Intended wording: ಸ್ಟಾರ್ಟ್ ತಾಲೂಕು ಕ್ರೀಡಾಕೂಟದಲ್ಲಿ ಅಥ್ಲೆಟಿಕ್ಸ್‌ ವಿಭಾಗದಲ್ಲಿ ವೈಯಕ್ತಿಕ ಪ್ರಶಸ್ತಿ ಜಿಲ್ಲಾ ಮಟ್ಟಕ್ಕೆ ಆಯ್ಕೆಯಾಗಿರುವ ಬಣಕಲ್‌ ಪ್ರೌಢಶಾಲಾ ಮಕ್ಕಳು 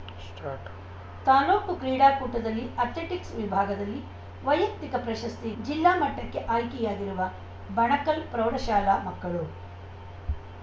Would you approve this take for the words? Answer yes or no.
yes